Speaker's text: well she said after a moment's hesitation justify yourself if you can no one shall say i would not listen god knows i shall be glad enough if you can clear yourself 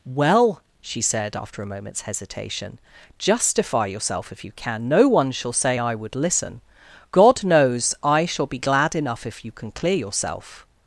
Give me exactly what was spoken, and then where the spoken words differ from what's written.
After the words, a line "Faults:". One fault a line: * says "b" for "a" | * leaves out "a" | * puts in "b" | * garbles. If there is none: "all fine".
well she said after a moment's hesitation justify yourself if you can no one shall say i would listen god knows i shall be glad enough if you can clear yourself
Faults:
* leaves out "not"